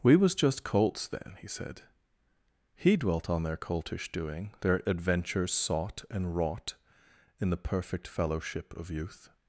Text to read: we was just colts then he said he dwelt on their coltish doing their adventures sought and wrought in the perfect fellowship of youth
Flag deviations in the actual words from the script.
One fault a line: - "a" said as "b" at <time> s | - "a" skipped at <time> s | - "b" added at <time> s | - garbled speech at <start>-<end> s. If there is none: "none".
none